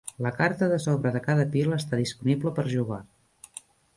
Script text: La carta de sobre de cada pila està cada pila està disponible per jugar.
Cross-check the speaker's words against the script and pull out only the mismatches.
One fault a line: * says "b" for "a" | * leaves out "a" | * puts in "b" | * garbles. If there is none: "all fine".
* leaves out "cada pila està"